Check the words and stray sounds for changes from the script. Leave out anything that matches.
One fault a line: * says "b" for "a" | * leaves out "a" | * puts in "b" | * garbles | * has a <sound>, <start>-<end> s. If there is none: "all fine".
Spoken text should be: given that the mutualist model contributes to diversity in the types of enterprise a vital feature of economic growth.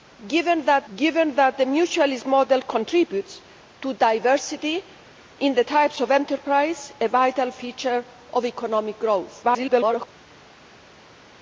* puts in "given that"
* garbles